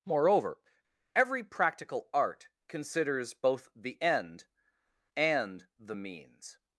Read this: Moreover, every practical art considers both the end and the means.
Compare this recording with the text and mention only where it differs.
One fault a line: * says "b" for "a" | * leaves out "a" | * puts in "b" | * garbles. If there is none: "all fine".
all fine